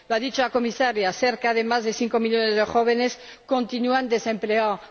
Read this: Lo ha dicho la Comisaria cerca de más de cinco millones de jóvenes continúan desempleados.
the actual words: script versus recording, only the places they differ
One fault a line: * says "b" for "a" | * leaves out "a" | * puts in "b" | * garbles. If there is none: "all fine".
all fine